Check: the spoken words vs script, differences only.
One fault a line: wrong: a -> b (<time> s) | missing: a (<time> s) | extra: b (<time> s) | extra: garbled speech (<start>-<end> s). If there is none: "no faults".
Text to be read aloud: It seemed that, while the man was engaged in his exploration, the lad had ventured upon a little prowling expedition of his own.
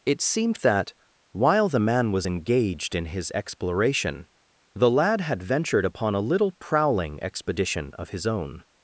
no faults